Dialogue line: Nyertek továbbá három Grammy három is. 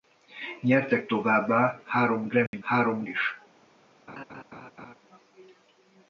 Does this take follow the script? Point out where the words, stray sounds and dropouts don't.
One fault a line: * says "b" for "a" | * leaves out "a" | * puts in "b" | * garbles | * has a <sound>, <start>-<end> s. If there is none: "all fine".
* has a dropout, 2.5-2.5 s
* has a laugh, 4.1-5.0 s